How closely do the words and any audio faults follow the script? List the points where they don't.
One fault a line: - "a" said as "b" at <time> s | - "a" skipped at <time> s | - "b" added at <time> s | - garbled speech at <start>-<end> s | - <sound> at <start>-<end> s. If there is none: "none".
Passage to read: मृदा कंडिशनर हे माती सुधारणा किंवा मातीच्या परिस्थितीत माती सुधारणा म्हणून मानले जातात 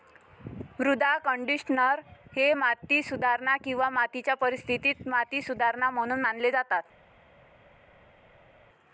none